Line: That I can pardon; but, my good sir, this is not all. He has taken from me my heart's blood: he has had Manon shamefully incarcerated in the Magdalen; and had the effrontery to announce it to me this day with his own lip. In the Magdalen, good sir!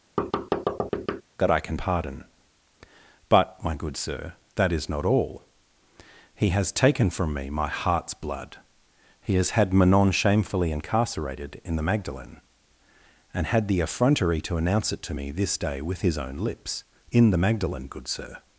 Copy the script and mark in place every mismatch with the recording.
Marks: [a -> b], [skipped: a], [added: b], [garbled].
That I can pardon; but, my good sir, [this -> that] is not all. He has taken from me my heart's blood: he has had Manon shamefully incarcerated in the Magdalen; and had the effrontery to announce it to me this day with his own [lip. -> lips] In the Magdalen, good sir!